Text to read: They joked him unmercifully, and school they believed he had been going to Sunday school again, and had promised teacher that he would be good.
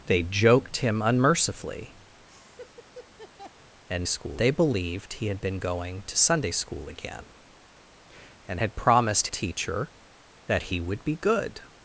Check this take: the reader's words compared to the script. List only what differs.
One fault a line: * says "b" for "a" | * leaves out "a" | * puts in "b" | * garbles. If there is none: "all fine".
all fine